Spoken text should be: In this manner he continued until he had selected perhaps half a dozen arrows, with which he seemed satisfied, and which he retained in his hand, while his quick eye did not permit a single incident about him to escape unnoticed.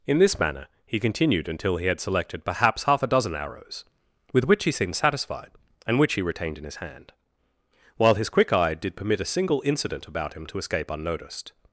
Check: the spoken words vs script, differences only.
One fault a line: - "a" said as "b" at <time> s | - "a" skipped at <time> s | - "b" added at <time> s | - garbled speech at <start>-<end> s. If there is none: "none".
- "not" skipped at 9.0 s